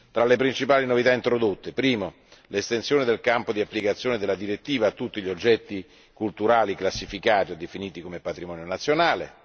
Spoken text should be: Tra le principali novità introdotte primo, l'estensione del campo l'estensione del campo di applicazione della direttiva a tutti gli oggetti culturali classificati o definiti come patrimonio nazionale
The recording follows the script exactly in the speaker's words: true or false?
false